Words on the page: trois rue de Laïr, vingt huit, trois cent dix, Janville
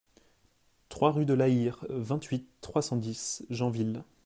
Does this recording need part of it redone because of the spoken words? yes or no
no